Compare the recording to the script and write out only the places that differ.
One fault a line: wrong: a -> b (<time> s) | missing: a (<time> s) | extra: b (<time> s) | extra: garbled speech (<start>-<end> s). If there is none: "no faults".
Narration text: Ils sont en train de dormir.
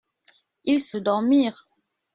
missing: en train (1.0 s)